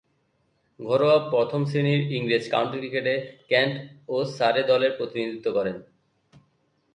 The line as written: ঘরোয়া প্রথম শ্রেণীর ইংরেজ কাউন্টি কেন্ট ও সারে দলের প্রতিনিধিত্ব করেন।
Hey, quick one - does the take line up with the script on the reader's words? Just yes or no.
no